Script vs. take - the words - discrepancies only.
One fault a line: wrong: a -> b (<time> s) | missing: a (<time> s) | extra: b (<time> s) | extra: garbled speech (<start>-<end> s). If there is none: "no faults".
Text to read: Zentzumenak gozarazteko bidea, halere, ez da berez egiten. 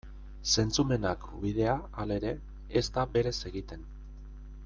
missing: gozarazteko (1.3 s)